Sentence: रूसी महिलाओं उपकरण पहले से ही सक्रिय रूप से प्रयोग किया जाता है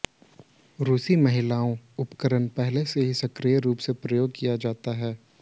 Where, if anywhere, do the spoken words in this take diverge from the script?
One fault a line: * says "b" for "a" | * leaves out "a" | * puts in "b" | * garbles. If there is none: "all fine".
all fine